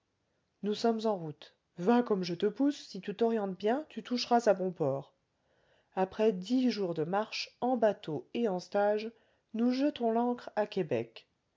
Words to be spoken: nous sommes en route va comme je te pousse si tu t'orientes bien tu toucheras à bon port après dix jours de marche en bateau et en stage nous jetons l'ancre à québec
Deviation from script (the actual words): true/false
false